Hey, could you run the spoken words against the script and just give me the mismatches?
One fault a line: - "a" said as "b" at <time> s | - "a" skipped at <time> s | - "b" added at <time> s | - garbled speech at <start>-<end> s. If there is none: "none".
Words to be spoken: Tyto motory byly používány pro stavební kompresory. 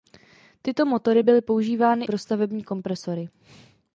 none